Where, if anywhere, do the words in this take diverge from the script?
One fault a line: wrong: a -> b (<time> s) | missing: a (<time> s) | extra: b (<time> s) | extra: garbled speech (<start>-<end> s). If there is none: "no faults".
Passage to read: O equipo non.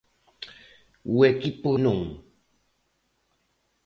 no faults